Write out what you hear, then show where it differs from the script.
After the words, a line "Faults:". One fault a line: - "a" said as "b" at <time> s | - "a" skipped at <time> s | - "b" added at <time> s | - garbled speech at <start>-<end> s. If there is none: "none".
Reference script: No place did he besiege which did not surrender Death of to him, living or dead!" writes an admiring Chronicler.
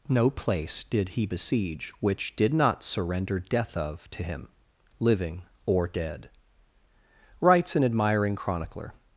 No place did he besiege which did not surrender Death of to him, living or dead!" writes an admiring Chronicler.
Faults:
none